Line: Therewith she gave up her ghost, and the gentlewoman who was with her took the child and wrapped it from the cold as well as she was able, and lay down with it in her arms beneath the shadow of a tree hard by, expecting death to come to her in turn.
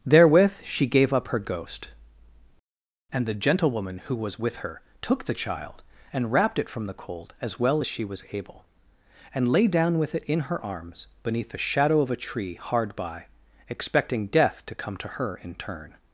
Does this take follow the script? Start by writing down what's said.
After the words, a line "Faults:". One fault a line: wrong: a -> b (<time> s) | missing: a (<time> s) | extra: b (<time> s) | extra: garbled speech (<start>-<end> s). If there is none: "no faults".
Therewith she gave up her ghost, and the gentlewoman who was with her took the child and wrapped it from the cold as well as she was able, and lay down with it in her arms beneath the shadow of a tree hard by, expecting death to come to her in turn.
Faults:
no faults